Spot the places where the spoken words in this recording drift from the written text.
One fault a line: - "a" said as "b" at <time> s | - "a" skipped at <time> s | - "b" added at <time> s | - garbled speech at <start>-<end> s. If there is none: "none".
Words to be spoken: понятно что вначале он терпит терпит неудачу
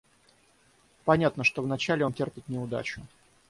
- "терпит" skipped at 2.5 s